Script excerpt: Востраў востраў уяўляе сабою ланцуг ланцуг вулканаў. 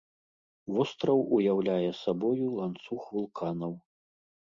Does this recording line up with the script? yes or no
no